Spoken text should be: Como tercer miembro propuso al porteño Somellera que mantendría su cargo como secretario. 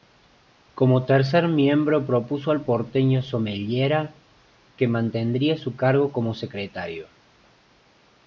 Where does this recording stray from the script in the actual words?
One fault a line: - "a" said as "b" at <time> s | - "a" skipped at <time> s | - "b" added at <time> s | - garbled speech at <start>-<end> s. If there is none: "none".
none